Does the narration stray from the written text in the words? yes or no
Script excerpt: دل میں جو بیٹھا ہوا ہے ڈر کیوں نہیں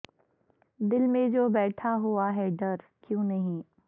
no